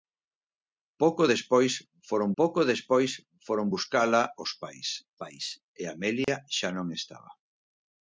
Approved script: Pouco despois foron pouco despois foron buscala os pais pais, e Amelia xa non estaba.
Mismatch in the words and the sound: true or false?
true